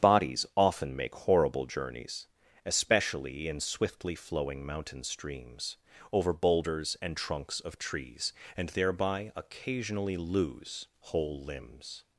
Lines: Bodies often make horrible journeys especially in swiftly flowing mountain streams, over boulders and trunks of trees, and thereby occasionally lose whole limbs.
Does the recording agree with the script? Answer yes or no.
yes